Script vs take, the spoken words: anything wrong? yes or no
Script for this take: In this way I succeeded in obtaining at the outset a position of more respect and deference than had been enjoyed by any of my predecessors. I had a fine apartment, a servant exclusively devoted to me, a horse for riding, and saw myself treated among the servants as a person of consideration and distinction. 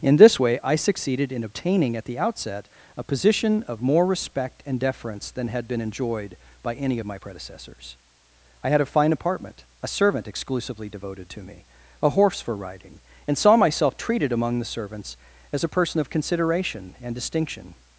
no